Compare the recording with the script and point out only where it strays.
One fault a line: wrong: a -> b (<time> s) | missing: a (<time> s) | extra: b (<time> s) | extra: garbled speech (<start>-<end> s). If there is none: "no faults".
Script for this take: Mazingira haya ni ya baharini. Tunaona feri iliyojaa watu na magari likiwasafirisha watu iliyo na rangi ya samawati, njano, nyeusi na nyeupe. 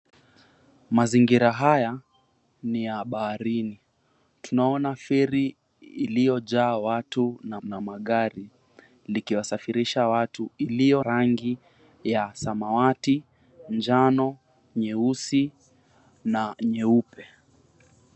extra: na (7.6 s)
missing: na (11.0 s)